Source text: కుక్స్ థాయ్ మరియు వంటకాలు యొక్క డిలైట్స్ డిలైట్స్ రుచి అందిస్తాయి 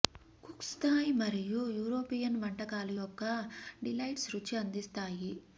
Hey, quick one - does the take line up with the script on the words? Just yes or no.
no